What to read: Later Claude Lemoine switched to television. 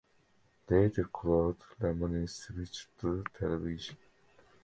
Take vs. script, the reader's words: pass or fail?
pass